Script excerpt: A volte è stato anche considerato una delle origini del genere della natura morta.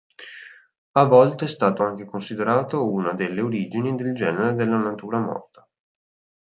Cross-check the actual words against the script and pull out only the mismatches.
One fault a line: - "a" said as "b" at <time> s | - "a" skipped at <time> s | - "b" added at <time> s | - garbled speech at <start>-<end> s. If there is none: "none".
none